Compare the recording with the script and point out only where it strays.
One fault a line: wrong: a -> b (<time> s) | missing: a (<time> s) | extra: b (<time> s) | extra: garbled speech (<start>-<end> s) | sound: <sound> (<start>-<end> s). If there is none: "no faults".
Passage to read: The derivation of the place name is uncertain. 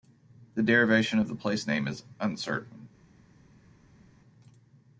no faults